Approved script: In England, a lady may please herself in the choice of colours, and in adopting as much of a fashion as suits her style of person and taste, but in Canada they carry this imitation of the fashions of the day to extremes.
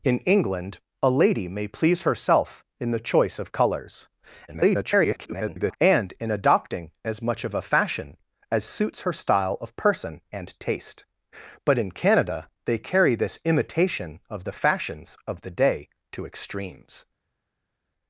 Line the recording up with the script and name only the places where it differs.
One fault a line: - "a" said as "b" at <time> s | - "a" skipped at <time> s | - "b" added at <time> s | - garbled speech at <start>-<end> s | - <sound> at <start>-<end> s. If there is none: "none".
- garbled speech at 4.5-5.8 s